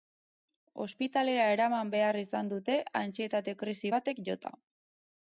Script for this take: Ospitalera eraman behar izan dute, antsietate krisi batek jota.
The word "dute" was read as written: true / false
true